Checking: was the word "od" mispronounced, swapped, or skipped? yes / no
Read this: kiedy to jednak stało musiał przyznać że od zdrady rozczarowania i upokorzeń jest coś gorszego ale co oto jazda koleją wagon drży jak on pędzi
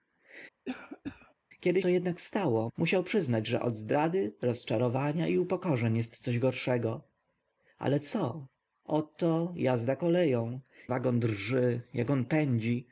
no